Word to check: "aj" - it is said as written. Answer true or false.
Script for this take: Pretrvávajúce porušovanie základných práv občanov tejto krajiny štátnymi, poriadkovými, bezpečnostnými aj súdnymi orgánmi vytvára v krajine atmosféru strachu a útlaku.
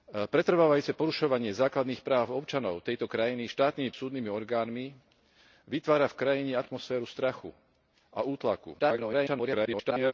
false